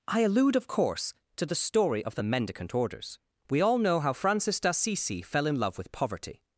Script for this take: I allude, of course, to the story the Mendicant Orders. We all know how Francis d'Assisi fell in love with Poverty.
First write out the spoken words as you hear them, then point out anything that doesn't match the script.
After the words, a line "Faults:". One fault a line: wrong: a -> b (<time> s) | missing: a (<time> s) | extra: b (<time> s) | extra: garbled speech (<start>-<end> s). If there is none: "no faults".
I allude, of course, to the story of the Mendicant Orders. We all know how Francis d'Assisi fell in love with Poverty.
Faults:
extra: of (2.0 s)